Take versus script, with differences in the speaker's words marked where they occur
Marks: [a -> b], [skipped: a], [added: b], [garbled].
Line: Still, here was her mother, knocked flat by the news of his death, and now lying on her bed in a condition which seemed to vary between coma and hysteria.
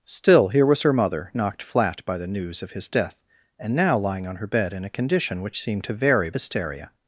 Still, here was her mother, knocked flat by the news of his death, and now lying on her bed in a condition which seemed to vary [skipped: between coma and] hysteria.